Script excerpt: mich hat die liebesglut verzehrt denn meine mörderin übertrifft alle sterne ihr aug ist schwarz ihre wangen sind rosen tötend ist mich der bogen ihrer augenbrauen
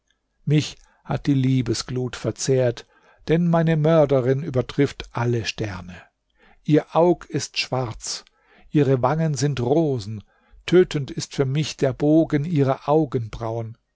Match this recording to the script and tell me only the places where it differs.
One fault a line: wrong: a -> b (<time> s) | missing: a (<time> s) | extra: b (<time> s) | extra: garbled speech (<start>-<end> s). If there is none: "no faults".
extra: für (11.3 s)